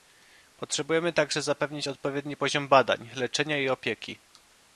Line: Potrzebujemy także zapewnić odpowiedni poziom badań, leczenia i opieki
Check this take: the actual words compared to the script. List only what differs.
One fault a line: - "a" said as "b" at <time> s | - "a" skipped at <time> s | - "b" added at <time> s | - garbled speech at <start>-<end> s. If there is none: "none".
none